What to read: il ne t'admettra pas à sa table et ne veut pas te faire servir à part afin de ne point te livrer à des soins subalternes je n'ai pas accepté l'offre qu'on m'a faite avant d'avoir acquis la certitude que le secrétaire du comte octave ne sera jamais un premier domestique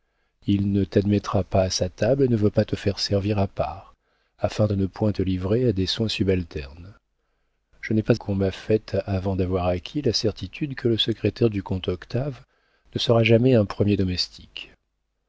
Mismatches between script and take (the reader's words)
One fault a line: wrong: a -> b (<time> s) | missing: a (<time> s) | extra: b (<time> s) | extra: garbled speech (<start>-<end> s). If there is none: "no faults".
missing: accepté l'offre (8.2 s)